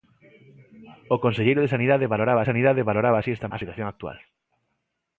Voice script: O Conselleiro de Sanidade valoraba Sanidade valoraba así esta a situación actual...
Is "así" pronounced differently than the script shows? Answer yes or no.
no